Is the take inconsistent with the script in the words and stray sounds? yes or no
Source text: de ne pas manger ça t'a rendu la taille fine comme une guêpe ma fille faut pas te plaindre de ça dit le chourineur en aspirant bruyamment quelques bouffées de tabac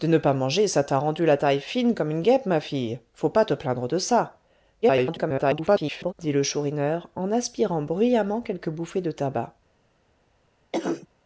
yes